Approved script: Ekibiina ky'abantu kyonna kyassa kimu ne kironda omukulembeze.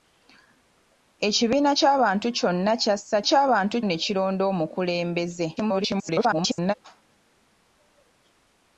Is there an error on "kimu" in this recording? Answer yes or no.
yes